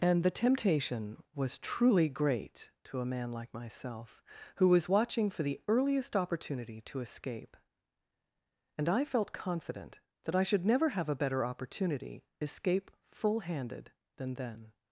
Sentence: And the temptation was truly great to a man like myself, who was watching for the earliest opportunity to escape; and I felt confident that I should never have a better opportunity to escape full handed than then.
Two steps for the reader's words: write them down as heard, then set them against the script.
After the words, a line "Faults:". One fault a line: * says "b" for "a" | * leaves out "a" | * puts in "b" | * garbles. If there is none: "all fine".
And the temptation was truly great to a man like myself, who was watching for the earliest opportunity to escape; and I felt confident that I should never have a better opportunity escape full handed than then.
Faults:
* leaves out "to"